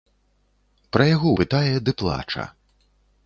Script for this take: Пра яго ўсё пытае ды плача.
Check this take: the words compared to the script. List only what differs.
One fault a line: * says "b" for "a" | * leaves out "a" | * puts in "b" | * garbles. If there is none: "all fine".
* leaves out "ўсё"